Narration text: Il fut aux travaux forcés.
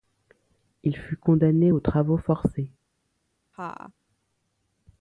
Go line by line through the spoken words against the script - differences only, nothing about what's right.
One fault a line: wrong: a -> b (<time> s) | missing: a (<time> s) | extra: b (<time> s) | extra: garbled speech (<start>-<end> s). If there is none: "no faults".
extra: condamné (1.1 s)